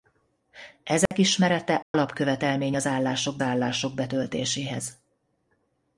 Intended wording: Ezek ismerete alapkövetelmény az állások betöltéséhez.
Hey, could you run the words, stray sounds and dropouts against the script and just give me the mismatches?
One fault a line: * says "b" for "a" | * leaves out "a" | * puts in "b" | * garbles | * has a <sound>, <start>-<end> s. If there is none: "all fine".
* has a dropout, 1.1-1.1 s
* has a dropout, 1.8-1.9 s
* puts in "állások"